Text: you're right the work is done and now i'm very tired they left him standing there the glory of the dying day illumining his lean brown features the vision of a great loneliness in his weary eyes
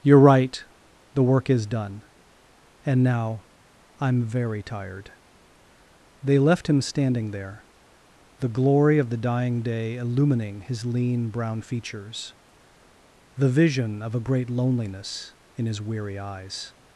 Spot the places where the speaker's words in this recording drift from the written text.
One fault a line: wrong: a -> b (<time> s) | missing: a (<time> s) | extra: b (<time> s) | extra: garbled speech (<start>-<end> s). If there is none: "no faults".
no faults